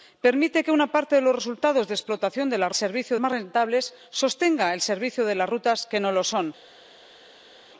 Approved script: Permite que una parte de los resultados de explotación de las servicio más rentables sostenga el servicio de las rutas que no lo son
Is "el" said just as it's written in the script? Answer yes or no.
yes